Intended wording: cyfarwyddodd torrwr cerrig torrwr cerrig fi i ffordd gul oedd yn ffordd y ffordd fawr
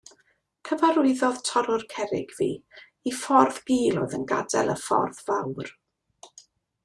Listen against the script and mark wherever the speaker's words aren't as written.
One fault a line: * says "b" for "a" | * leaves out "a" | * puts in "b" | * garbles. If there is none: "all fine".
* leaves out "torrwr cerrig"
* says "gadael" for "ffordd"